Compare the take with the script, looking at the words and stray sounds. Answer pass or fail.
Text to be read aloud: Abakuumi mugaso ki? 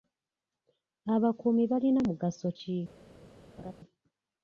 fail